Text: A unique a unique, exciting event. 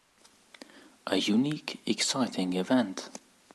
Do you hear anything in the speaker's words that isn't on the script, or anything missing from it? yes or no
yes